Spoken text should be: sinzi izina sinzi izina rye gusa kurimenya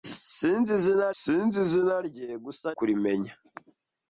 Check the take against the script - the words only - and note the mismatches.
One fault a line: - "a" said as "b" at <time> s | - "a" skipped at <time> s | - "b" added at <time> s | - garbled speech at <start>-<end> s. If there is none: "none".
none